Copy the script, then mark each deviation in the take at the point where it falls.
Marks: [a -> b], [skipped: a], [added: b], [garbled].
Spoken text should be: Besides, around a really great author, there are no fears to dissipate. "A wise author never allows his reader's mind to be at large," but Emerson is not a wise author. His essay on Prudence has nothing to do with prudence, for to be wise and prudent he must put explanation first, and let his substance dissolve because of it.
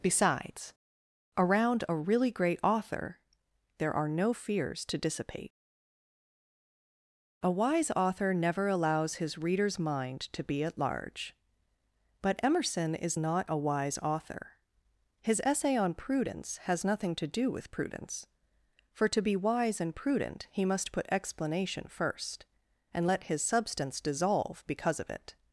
Besides, around a really great author, there are no fears to dissipate. "A wise author never allows his reader's mind to be at large," but Emerson is not a wise author. His essay on Prudence has nothing to do with prudence, for to be wise and prudent he must put explanation first, and let his substance dissolve because of it.